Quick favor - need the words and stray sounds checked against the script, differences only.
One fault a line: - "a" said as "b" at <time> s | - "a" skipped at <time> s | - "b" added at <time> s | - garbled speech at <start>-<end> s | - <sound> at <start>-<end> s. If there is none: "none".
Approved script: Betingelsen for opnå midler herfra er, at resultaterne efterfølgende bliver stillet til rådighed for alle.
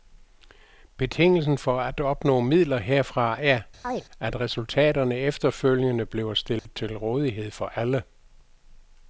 - "at" added at 1.8 s
- chirp at 3.8-4.0 s
- dropout at 6.6-6.7 s